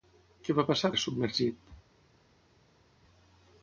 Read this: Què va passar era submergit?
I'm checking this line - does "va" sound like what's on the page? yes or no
yes